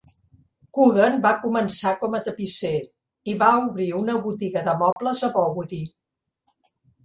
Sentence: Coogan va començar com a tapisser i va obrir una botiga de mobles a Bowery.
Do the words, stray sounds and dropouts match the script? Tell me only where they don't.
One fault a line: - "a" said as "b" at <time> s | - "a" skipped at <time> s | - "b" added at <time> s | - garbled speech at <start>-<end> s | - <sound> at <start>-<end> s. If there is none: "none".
- dropout at 4.9-5.0 s